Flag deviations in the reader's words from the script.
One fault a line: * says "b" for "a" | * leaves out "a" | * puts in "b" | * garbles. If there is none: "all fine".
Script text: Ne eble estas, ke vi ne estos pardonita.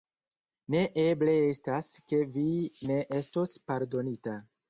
all fine